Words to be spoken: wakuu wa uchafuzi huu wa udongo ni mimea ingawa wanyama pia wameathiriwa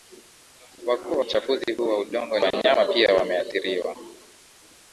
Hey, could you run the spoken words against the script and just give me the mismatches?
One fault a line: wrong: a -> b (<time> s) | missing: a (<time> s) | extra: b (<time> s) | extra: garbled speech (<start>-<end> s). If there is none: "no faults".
missing: wa (1.2 s)
missing: ni mimea ingawa (2.4 s)